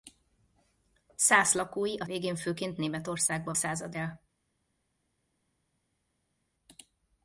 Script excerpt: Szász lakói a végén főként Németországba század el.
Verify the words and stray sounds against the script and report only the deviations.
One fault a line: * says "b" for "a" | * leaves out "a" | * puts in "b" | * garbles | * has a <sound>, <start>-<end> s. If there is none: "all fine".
all fine